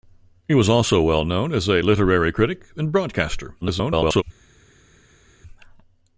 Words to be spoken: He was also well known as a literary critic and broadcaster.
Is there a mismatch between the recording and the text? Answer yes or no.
yes